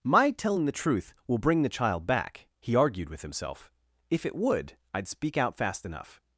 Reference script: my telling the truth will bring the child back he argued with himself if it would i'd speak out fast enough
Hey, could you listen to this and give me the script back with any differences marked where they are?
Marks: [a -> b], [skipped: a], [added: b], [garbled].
my telling the truth will bring the child back he argued with himself if it would i'd speak out fast enough